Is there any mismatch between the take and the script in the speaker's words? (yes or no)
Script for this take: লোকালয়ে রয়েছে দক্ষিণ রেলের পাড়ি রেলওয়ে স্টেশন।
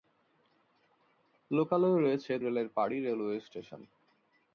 yes